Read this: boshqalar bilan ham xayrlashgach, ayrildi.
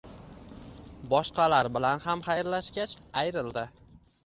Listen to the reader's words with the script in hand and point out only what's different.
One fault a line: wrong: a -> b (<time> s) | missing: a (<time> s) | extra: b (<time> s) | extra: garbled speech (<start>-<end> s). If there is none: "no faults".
no faults